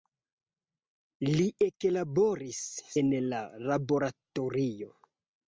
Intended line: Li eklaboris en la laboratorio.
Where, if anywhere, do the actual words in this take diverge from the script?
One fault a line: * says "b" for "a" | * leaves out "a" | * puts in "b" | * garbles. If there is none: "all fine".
all fine